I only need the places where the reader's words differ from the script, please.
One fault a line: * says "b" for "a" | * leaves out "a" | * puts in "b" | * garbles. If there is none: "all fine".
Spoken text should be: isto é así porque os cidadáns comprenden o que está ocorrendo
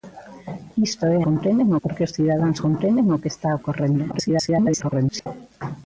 * says "comprenden" for "así"
* garbles